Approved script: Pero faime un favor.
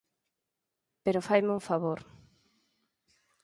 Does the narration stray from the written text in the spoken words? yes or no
no